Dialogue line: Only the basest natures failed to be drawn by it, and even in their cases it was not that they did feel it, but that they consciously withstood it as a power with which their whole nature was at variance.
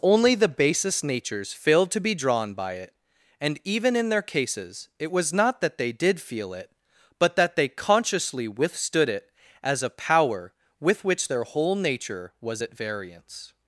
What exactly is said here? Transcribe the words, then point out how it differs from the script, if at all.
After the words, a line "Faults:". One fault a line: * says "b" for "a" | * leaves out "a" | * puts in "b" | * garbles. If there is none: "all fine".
Only the basest natures failed to be drawn by it, and even in their cases it was not that they did feel it, but that they consciously withstood it as a power with which their whole nature was at variance.
Faults:
all fine